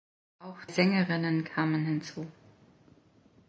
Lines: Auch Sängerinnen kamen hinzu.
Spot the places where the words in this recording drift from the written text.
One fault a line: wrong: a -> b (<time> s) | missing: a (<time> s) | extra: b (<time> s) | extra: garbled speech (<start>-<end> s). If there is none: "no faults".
no faults